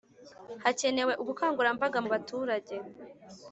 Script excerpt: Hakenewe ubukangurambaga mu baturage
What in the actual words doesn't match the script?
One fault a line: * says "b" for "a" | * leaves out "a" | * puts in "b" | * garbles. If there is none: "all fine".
all fine